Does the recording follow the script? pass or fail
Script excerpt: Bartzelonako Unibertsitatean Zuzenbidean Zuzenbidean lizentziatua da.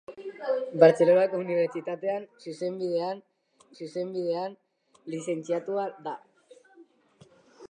pass